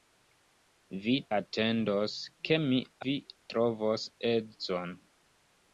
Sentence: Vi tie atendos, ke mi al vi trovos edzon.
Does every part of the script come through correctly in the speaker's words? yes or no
no